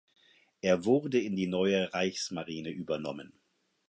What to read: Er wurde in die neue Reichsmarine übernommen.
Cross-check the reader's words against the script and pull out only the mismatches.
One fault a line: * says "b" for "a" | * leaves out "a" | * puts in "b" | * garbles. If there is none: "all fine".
all fine